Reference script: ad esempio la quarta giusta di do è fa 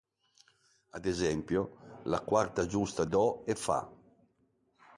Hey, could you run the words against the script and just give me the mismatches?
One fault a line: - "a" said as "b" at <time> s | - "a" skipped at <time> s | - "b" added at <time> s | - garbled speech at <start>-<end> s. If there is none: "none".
- "di" skipped at 3.0 s